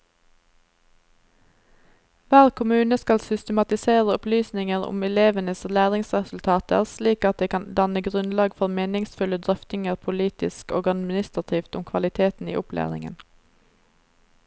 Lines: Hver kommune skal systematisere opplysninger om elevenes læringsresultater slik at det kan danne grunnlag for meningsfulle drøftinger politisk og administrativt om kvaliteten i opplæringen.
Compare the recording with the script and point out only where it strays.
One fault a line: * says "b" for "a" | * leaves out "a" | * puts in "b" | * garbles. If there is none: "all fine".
all fine